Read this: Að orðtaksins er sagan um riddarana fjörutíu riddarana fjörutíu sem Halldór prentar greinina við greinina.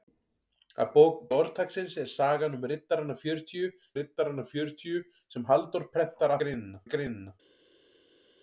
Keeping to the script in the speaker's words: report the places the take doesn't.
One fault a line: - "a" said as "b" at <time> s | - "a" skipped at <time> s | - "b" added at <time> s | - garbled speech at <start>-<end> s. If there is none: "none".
none